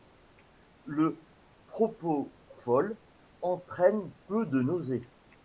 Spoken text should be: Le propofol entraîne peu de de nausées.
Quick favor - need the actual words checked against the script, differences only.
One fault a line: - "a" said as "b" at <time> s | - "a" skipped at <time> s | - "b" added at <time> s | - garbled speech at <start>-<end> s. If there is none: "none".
- "de" skipped at 4.6 s